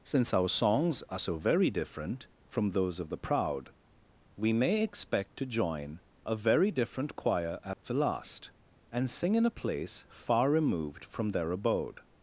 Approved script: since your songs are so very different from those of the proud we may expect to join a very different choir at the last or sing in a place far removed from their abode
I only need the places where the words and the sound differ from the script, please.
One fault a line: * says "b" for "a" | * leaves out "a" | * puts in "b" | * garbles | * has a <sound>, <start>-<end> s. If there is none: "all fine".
* says "our" for "your"
* has a dropout, 7.7-7.8 s
* says "and" for "or"